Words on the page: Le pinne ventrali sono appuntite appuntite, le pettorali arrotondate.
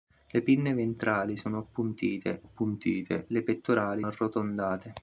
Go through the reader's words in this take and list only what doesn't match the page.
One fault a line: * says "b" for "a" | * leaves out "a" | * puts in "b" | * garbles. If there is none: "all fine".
all fine